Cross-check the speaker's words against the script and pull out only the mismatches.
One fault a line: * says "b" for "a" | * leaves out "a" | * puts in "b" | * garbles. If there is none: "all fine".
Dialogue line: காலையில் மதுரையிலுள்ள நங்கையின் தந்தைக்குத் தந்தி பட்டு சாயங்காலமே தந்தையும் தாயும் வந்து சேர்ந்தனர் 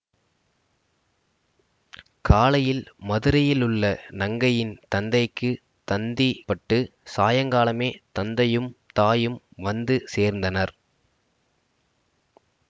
all fine